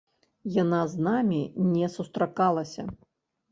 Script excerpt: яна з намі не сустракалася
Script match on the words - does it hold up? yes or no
yes